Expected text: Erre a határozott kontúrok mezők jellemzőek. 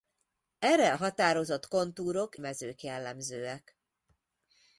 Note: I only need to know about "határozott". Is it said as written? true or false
true